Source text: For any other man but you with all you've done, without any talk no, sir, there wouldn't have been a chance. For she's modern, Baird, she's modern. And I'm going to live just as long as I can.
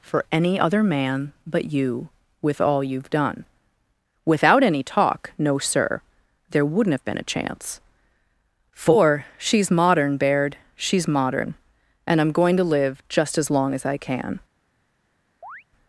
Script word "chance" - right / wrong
right